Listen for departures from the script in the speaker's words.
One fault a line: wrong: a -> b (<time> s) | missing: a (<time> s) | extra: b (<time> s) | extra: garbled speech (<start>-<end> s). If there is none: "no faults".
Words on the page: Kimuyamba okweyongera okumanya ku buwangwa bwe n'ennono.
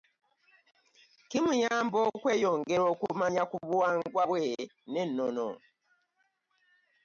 no faults